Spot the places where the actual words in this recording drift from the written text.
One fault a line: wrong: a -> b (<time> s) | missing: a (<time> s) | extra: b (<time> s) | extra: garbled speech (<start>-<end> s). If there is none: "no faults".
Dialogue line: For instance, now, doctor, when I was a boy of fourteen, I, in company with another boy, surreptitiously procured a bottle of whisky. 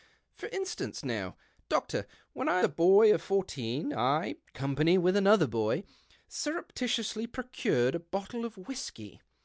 missing: was (2.6 s)
missing: in (4.4 s)